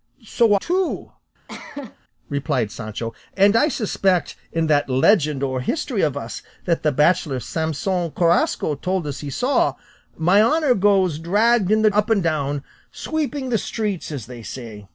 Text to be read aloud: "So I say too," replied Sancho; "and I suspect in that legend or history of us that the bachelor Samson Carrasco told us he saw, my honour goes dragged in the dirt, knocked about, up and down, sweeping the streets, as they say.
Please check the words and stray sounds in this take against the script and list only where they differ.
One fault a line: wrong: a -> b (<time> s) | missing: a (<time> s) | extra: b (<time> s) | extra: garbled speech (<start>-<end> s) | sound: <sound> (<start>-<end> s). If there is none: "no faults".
missing: I say (0.6 s)
sound: cough (1.5-2.0 s)
missing: dirt knocked about (11.9 s)